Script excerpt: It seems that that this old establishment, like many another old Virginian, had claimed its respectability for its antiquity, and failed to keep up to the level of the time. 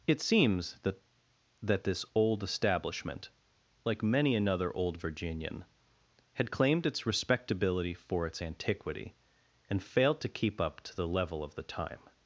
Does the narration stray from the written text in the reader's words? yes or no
no